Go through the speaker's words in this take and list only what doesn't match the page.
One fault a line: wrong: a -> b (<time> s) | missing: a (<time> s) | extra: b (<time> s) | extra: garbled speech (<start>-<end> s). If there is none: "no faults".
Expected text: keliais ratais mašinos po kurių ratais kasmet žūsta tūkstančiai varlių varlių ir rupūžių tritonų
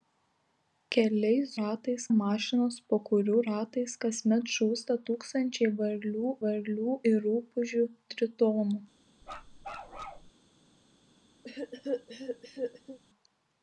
no faults